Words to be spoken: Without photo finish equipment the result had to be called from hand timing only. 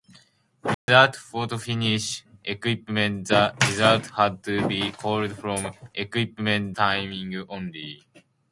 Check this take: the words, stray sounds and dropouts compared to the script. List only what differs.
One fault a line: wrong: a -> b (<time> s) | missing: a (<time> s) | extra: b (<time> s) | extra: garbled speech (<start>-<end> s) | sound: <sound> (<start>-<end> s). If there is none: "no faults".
sound: dropout (0.7-0.9 s)
wrong: hand -> equipment (6.0 s)